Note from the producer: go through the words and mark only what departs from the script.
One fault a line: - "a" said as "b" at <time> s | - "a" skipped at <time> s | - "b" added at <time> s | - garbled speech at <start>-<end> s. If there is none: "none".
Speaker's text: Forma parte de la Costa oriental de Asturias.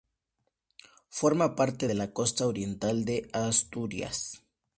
none